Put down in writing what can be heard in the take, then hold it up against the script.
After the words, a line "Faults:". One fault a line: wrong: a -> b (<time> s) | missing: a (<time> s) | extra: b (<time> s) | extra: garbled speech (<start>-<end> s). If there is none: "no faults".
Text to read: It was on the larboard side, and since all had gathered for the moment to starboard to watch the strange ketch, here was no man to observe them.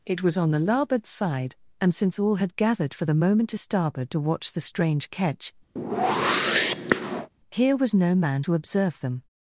It was on the larboard side, and since all had gathered for the moment to starboard to watch the strange ketch, here was no man to observe them.
Faults:
no faults